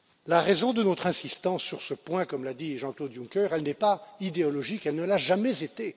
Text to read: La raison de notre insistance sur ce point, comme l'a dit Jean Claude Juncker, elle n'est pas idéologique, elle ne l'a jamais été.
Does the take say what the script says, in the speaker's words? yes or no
yes